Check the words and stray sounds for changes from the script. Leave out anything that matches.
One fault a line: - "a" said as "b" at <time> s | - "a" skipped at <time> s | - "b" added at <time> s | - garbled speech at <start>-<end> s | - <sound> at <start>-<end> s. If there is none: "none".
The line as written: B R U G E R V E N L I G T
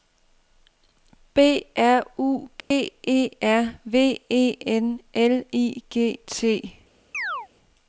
- dropout at 2.6-2.7 s
- chirp at 7.1-7.5 s